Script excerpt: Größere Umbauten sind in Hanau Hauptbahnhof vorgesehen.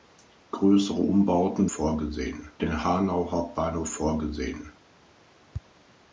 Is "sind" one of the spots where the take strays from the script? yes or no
yes